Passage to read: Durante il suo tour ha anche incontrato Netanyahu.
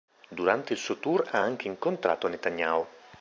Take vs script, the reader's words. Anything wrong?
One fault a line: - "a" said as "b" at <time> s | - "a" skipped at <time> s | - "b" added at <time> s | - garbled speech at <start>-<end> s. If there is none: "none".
none